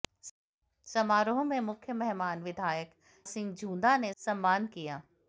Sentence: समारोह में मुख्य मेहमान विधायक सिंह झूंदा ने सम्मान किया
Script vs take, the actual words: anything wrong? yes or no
no